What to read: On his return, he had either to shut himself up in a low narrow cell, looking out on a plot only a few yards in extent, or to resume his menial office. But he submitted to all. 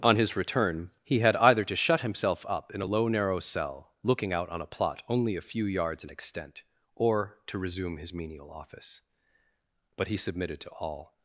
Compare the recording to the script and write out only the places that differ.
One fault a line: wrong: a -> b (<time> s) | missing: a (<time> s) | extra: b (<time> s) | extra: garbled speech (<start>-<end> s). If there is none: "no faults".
no faults